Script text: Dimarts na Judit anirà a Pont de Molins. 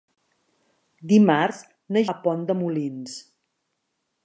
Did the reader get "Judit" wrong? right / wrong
wrong